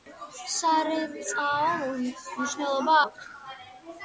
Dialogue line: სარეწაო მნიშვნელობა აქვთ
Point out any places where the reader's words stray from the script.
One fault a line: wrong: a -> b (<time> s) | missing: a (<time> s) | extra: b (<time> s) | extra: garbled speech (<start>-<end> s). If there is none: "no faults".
no faults